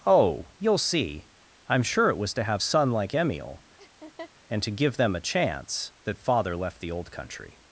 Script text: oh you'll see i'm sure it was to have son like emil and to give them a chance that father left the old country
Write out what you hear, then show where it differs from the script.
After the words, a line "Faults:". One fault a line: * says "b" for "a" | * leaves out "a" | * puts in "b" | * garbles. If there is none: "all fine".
oh you'll see i'm sure it was to have son like emil and to give them a chance that father left the old country
Faults:
all fine